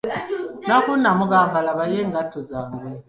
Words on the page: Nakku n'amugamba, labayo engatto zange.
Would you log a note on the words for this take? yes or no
no